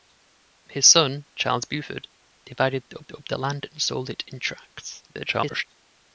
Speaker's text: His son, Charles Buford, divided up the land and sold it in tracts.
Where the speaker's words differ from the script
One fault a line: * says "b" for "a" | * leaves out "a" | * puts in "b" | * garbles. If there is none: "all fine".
* puts in "up"
* garbles